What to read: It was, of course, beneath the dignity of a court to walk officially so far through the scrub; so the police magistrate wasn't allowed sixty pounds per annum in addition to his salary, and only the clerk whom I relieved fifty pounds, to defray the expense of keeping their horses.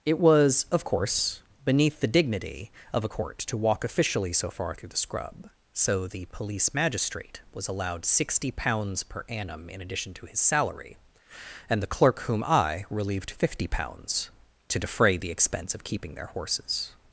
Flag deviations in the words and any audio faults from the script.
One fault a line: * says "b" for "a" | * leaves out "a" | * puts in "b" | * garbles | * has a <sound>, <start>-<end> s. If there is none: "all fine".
* says "was" for "wasn't"
* leaves out "only"